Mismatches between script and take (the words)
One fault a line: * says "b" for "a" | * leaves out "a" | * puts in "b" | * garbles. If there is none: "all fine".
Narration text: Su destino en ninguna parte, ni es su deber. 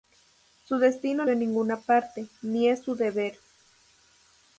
all fine